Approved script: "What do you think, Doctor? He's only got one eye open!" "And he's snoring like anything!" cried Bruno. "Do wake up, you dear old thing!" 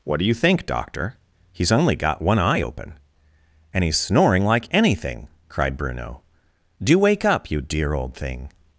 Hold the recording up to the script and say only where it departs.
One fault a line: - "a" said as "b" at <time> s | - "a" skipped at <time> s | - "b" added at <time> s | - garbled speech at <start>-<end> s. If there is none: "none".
none